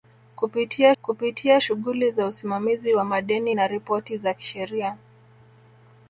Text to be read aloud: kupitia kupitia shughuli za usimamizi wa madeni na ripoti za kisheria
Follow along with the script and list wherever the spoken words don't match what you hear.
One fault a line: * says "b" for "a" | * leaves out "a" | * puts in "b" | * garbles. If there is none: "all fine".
all fine